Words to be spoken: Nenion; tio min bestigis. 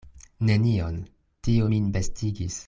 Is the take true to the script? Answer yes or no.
yes